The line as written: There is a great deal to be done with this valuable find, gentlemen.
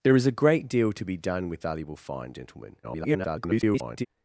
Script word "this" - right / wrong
wrong